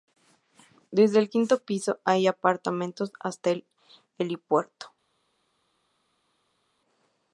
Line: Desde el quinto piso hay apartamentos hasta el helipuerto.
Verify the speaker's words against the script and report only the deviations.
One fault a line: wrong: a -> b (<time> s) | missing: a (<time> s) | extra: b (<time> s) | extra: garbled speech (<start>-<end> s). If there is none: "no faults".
no faults